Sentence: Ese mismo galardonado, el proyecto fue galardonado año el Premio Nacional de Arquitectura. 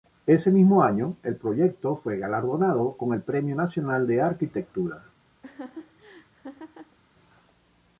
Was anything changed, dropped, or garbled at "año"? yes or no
yes